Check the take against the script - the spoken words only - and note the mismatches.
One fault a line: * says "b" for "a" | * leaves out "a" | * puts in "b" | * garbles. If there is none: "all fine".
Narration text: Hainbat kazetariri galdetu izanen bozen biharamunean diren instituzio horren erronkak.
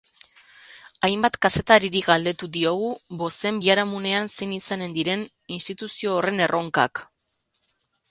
* says "diogu" for "izanen"
* puts in "zein izanen"